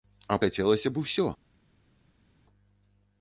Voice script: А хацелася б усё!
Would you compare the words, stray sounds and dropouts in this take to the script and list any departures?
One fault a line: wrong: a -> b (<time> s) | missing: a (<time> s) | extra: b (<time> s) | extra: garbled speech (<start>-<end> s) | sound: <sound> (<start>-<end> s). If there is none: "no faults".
no faults